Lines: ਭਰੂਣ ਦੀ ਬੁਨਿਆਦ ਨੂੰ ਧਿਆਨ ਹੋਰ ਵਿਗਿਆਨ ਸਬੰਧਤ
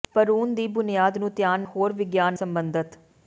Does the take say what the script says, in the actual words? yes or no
yes